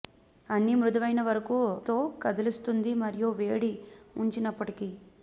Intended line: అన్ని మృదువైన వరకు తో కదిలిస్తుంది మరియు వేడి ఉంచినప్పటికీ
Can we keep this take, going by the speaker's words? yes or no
yes